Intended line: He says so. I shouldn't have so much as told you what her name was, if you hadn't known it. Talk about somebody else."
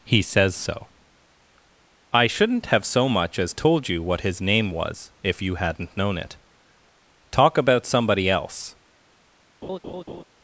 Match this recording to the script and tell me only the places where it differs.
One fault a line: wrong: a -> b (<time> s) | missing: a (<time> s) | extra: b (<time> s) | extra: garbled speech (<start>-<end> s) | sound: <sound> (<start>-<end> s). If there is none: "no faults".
wrong: her -> his (4.2 s)
sound: laugh (9.6-10.2 s)